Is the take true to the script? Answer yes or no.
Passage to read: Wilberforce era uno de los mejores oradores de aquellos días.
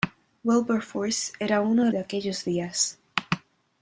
no